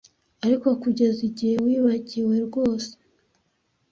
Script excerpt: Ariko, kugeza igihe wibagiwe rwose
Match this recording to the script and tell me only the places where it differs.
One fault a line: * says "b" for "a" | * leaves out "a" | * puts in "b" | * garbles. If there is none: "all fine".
all fine